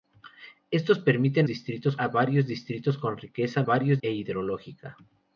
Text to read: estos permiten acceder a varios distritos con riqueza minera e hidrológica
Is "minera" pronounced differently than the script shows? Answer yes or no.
yes